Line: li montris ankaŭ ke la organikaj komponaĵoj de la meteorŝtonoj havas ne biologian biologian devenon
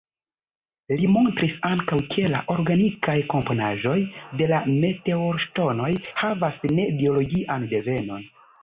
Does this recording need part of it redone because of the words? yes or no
yes